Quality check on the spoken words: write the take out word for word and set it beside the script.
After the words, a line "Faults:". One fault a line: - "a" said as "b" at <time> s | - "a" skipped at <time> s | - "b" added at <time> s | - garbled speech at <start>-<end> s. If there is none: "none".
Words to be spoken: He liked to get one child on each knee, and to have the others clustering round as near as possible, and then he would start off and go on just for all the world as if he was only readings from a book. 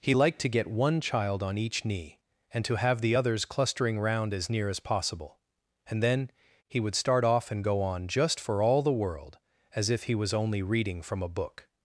He liked to get one child on each knee, and to have the others clustering round as near as possible, and then he would start off and go on just for all the world as if he was only reading from a book.
Faults:
- "readings" said as "reading" at 10.6 s